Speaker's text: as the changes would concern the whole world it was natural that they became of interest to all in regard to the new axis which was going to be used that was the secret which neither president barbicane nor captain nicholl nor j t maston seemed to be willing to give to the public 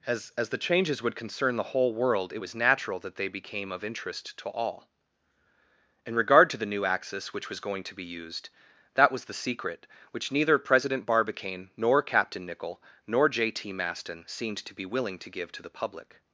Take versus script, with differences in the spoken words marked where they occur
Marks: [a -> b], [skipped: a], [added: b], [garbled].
as [added: as] the changes would concern the whole world it was natural that they became of interest to all in regard to the new axis which was going to be used that was the secret which neither president barbicane nor captain nicholl nor j t maston seemed to be willing to give to the public